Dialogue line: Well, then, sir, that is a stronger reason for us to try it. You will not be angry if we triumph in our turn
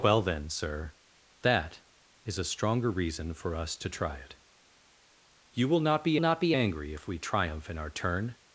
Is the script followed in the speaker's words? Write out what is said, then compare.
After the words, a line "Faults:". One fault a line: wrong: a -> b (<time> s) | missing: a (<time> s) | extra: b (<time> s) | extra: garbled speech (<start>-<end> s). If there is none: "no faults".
Well, then, sir, that is a stronger reason for us to try it. You will not be not be angry if we triumph in our turn
Faults:
extra: not be (6.2 s)